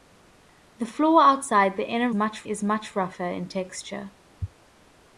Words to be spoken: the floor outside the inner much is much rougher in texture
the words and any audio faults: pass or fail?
pass